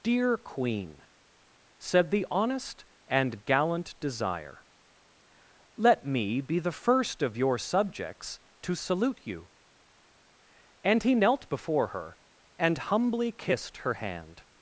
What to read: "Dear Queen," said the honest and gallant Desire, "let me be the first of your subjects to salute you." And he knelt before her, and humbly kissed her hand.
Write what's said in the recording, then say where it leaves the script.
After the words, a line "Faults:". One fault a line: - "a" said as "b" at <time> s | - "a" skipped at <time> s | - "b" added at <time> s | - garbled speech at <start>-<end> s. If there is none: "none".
"Dear Queen," said the honest and gallant Desire, "let me be the first of your subjects to salute you." And he knelt before her, and humbly kissed her hand.
Faults:
none